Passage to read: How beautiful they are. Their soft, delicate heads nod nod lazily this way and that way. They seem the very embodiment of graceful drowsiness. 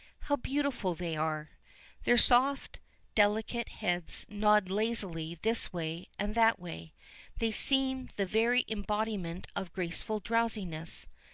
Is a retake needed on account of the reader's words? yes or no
yes